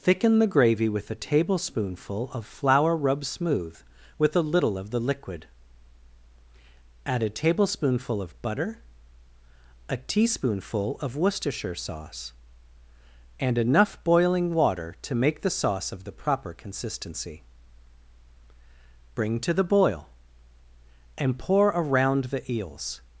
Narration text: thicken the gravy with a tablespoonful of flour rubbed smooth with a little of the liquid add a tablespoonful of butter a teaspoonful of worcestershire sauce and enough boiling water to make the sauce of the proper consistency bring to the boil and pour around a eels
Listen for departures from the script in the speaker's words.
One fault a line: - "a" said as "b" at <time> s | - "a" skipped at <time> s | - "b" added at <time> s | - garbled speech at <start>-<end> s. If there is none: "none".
- "a" said as "the" at 22.2 s